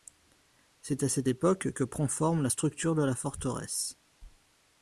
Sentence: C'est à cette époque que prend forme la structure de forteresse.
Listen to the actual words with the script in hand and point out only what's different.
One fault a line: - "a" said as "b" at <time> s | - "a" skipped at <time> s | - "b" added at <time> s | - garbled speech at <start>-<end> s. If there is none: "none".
- "la" added at 3.0 s